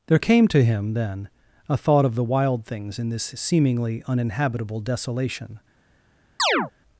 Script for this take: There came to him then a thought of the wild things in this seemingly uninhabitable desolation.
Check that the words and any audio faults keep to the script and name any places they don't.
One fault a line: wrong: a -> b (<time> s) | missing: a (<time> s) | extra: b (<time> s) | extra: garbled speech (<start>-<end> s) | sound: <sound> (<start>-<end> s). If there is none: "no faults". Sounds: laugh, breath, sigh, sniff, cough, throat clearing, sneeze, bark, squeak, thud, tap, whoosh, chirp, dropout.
sound: chirp (6.4-6.7 s)